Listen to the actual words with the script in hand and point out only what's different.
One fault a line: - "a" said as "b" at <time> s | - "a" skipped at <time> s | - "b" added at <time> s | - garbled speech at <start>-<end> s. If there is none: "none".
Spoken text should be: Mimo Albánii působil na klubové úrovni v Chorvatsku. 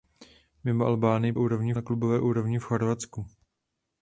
- "působil" said as "úrovni" at 1.4 s